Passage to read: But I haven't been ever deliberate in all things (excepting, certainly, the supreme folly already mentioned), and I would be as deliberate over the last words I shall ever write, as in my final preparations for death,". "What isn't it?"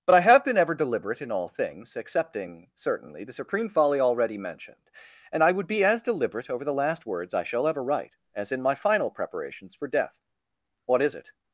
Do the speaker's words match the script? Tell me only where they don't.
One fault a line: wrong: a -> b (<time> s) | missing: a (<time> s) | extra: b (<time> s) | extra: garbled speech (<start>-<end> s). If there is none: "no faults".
wrong: haven't -> have (0.2 s)
wrong: isn't -> is (11.0 s)